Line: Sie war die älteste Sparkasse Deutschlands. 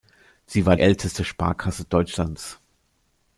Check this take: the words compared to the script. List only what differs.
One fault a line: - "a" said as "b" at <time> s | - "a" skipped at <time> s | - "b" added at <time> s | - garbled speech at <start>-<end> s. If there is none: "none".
- "die" skipped at 0.8 s